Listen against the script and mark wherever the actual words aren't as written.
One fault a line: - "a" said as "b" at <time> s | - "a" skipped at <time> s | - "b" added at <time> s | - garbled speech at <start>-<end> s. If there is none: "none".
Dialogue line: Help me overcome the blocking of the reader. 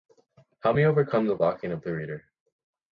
none